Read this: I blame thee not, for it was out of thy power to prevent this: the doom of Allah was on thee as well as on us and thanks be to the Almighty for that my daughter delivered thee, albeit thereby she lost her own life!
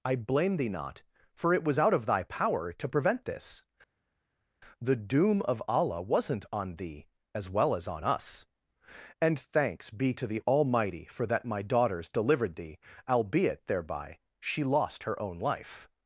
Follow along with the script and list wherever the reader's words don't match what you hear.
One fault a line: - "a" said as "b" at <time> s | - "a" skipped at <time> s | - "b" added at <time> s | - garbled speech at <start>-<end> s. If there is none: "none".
- "was" said as "wasn't" at 6.0 s
- "daughter" said as "daughters" at 11.6 s